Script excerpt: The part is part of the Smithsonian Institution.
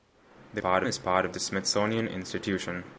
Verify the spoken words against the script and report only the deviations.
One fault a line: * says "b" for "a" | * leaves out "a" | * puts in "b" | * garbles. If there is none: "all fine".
all fine